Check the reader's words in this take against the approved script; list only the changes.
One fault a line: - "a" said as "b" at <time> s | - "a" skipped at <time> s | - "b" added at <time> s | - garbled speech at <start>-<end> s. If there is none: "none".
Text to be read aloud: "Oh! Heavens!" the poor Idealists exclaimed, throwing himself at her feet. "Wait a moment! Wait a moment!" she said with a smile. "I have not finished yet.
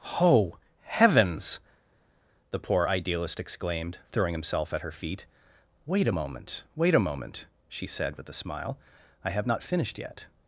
- "Idealists" said as "Idealist" at 2.9 s